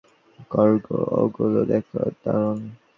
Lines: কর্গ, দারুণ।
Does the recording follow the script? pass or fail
fail